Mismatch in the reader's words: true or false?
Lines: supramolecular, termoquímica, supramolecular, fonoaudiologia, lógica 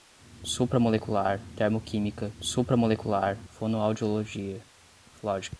false